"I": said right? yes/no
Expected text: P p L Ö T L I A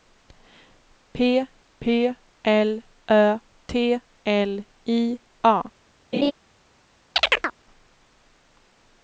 yes